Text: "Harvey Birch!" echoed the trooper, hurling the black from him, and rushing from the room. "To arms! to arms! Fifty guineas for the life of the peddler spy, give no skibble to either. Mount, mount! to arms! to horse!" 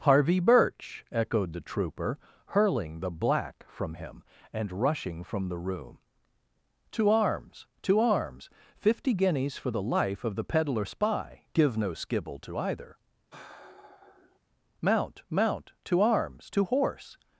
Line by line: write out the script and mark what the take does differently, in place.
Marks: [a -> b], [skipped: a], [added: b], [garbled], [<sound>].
"Harvey Birch!" echoed the trooper, hurling the black from him, and rushing from the room. "To arms! to arms! Fifty guineas for the life of the peddler spy, give no skibble to either. [sigh] Mount, mount! to arms! to horse!"